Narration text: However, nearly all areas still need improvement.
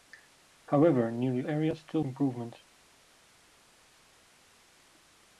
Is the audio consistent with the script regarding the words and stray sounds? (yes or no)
no